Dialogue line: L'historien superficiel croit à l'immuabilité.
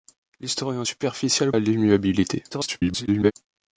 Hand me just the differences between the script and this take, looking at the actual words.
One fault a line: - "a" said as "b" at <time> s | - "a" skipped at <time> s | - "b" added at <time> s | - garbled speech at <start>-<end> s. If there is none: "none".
- "croit" skipped at 1.5 s
- garbled speech at 2.5-3.3 s